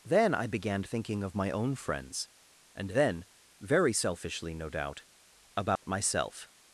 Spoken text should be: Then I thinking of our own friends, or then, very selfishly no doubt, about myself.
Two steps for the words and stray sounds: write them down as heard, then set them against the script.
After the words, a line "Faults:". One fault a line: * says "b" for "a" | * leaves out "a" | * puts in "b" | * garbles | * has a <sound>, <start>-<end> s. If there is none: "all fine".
Then I began thinking of my own friends, and then, very selfishly no doubt, about myself.
Faults:
* puts in "began"
* says "my" for "our"
* says "and" for "or"
* has a dropout, 5.8-5.8 s